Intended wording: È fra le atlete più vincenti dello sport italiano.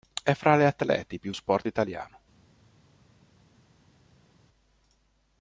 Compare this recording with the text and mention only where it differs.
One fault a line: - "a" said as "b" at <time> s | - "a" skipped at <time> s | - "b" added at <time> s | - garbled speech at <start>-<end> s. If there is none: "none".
- "vincenti dello" skipped at 1.3 s